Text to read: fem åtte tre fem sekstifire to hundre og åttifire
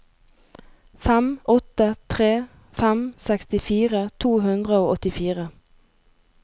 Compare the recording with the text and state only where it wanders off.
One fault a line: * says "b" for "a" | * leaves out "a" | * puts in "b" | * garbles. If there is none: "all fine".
all fine